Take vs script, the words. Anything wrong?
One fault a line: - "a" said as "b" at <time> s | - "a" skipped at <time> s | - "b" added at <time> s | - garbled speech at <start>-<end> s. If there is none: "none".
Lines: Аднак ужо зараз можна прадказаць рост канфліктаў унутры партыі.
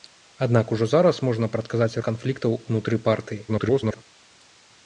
- "рост" skipped at 2.0 s
- garbled speech at 3.5-4.0 s